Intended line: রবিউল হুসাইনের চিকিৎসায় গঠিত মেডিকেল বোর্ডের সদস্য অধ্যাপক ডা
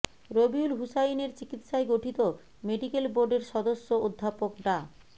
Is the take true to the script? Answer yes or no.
yes